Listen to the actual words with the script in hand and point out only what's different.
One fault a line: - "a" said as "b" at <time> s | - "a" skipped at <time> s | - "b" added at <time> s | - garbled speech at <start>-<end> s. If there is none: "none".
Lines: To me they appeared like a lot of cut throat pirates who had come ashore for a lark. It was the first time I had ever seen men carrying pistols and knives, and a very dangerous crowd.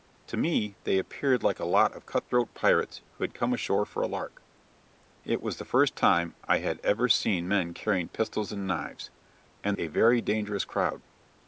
none